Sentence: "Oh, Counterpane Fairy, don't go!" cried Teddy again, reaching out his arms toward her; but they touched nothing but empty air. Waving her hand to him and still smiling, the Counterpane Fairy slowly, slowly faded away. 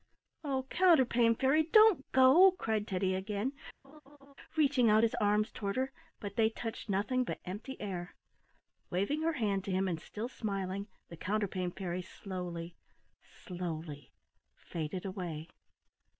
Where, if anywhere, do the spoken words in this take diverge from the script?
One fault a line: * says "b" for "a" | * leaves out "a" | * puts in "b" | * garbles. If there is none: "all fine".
all fine